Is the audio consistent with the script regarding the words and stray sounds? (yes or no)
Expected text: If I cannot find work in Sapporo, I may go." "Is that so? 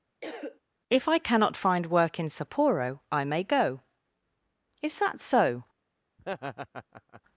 no